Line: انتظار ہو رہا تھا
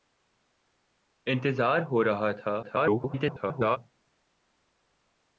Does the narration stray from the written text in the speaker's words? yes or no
yes